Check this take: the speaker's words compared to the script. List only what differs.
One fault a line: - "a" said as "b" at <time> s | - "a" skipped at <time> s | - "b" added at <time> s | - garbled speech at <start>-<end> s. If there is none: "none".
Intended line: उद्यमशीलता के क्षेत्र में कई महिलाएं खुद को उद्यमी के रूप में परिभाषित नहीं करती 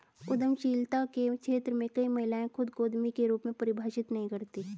none